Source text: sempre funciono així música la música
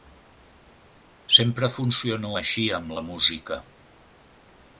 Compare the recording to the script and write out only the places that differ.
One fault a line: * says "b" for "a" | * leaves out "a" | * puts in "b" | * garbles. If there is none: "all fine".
* says "amb" for "música"